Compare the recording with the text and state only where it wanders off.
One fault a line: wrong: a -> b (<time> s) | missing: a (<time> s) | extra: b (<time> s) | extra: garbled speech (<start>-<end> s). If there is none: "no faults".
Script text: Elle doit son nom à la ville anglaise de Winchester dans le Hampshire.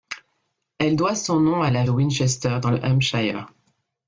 missing: ville anglaise (1.8 s)